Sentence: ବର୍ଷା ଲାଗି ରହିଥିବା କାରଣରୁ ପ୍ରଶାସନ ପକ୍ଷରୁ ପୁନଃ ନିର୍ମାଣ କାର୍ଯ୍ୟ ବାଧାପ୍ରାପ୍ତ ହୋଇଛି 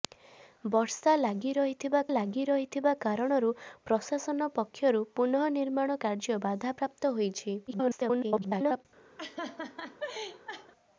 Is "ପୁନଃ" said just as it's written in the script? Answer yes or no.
yes